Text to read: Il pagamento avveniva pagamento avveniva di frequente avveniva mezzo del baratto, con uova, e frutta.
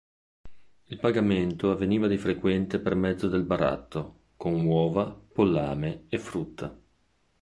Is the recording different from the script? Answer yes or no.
yes